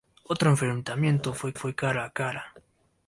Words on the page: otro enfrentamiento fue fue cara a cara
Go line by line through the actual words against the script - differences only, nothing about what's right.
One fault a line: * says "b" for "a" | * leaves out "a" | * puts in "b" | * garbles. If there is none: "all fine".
all fine